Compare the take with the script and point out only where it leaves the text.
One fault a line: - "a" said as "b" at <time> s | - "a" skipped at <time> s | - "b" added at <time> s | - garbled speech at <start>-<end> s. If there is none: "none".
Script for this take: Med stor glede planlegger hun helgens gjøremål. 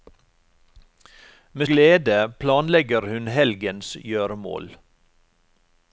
- "stor" skipped at 1.7 s